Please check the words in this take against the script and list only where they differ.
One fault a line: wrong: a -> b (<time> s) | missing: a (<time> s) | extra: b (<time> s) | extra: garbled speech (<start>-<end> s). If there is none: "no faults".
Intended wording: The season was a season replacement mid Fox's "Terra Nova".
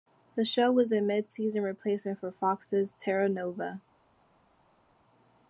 wrong: season -> show (0.4 s)
extra: mid (1.0 s)
wrong: mid -> for (2.2 s)